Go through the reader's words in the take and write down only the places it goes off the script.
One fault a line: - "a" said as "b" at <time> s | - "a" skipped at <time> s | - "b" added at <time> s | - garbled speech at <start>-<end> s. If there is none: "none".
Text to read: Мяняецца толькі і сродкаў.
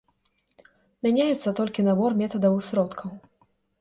- "набор метадаў" added at 1.9 s